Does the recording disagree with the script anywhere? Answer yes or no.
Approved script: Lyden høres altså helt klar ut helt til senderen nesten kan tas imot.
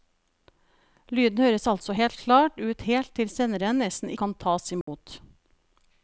no